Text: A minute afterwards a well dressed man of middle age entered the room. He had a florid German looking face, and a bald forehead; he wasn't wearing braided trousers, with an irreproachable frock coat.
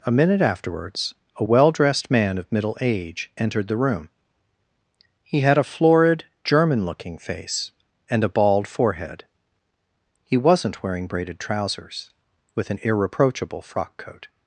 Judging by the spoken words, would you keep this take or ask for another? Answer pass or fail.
pass